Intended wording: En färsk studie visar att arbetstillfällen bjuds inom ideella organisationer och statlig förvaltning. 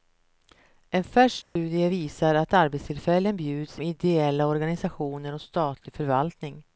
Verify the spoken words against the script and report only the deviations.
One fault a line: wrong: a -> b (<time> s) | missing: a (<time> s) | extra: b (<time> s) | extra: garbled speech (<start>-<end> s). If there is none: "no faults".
missing: inom (3.8 s)